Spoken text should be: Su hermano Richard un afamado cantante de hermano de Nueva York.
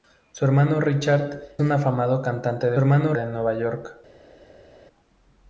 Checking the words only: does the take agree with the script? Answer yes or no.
yes